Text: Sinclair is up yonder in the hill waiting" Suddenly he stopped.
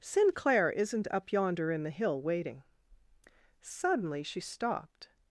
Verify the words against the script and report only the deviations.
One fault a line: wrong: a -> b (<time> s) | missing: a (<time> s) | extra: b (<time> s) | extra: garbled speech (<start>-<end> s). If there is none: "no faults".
wrong: is -> isn't (0.7 s)
wrong: he -> she (4.2 s)